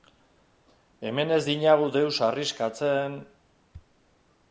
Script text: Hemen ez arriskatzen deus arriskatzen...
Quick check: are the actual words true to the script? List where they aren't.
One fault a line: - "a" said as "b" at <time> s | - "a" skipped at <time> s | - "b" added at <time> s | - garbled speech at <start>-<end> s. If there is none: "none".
- "arriskatzen" said as "dinagu" at 1.5 s